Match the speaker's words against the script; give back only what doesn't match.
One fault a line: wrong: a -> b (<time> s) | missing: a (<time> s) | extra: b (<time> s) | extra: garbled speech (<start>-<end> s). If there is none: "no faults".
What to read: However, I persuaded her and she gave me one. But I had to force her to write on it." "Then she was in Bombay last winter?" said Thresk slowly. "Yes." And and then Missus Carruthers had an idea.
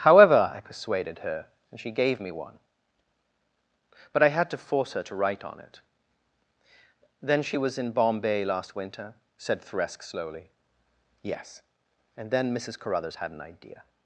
missing: and (12.3 s)